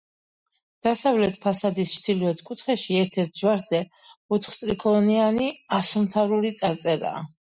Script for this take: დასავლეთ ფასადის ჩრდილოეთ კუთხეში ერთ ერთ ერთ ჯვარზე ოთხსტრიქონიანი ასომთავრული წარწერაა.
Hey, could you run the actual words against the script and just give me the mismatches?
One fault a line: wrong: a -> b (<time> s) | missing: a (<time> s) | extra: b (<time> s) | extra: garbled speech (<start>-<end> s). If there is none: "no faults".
missing: ერთ (3.4 s)